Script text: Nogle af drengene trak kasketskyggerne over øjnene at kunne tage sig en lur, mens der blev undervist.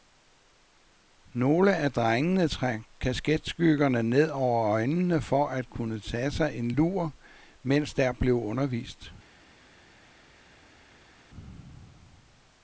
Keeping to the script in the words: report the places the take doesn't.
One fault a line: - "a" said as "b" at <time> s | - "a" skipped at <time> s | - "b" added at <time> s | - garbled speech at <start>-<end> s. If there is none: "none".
- "ned" added at 4.0 s
- "for" added at 5.2 s